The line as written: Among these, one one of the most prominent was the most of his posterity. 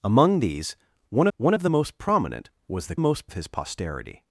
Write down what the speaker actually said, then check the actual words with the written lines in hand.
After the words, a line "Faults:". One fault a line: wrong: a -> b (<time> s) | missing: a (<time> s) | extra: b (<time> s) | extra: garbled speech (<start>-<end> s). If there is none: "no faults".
Among these, one one of the most prominent was the most of his posterity.
Faults:
no faults